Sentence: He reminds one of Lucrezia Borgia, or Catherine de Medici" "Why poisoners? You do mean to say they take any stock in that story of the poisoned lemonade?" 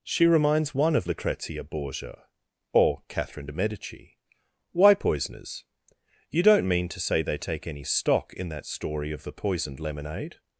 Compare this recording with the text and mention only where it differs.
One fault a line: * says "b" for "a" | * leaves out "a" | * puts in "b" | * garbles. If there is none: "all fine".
* says "She" for "He"
* says "don't" for "do"